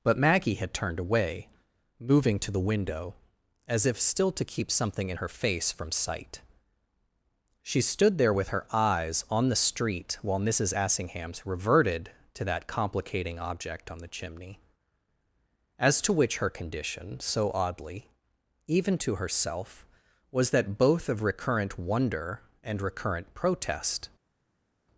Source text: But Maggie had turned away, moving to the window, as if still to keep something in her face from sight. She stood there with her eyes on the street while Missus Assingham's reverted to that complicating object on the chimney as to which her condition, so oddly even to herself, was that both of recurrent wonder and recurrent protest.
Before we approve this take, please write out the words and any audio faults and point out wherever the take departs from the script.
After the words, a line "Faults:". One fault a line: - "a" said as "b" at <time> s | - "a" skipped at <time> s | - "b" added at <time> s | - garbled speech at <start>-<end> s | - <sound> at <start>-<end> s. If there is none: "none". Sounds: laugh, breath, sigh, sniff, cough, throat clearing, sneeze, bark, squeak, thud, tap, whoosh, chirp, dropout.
But Maggie had turned away, moving to the window, as if still to keep something in her face from sight. She stood there with her eyes on the street while Missus Assingham's reverted to that complicating object on the chimney as to which her condition, so oddly even to herself, was that both of recurrent wonder and recurrent protest.
Faults:
none